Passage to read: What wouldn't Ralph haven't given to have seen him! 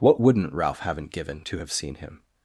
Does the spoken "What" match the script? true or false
true